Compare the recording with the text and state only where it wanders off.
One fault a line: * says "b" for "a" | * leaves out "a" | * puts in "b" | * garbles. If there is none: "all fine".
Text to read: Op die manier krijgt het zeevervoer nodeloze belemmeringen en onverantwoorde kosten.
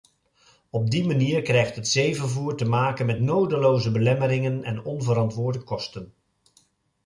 * puts in "te maken met"